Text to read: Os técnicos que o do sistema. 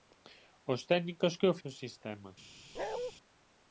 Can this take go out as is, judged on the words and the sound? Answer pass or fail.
fail